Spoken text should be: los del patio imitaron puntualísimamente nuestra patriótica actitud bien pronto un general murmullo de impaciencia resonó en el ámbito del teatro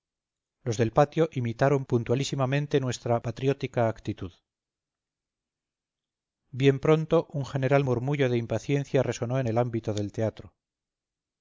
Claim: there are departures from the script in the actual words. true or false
false